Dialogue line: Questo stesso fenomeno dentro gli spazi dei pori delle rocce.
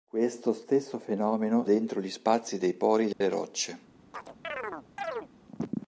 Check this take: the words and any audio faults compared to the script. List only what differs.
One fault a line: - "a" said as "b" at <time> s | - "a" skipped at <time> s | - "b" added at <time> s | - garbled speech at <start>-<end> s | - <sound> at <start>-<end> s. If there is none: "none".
- dropout at 3.1-3.2 s
- chirp at 4.1-5.3 s